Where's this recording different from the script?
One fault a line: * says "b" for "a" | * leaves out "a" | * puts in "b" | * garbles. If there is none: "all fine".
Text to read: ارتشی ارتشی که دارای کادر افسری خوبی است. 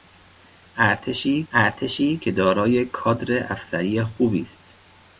all fine